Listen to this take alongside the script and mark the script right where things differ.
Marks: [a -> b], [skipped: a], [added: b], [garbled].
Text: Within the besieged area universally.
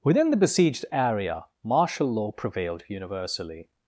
Within the besieged area [added: martial law prevailed] universally.